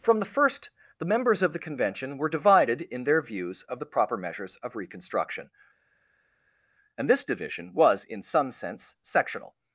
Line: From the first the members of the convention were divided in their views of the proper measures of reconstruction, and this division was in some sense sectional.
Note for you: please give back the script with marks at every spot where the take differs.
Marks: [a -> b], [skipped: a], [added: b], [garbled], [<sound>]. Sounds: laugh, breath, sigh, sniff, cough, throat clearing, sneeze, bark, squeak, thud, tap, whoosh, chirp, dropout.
From the first the members of the convention were divided in their views of the proper measures of reconstruction, and this division was in some sense sectional.